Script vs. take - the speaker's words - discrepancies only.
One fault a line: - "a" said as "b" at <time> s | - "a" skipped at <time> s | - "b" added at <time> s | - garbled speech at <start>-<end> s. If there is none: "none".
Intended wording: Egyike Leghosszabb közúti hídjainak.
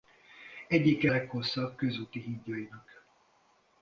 none